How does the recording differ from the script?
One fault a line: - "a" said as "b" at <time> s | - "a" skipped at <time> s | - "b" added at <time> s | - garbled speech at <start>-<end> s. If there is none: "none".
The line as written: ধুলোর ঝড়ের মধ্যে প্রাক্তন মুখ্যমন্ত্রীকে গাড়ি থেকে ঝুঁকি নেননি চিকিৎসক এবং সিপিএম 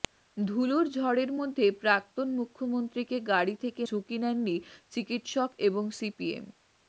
none